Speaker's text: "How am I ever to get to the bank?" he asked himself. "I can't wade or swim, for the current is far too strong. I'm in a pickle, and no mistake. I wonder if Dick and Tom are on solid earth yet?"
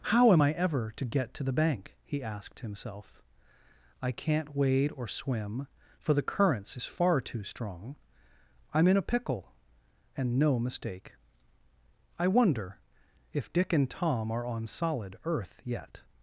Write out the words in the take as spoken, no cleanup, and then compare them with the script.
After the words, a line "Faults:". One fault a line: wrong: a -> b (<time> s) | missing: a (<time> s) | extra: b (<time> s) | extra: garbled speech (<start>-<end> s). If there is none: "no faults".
"How am I ever to get to the bank?" he asked himself. "I can't wade or swim, for the currents is far too strong. I'm in a pickle, and no mistake. I wonder if Dick and Tom are on solid earth yet?"
Faults:
wrong: current -> currents (6.2 s)